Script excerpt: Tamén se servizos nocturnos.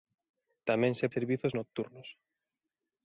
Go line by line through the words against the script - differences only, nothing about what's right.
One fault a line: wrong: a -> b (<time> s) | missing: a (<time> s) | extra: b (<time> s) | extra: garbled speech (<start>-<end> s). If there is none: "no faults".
no faults